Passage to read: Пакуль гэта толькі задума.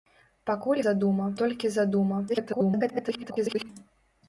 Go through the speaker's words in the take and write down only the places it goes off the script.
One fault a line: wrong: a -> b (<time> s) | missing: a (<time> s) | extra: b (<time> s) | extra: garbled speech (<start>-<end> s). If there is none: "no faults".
wrong: гэта -> задума (0.9 s)
extra: garbled speech (2.3-3.7 s)